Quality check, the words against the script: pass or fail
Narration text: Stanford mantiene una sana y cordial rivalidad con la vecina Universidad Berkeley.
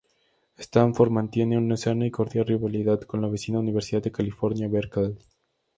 fail